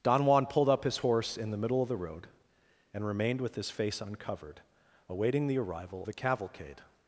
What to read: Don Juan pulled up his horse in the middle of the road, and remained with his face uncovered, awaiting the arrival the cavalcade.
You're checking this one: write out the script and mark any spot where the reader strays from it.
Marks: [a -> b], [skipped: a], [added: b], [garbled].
Don Juan pulled up his horse in the middle of the road, and remained with his face uncovered, awaiting the arrival the cavalcade.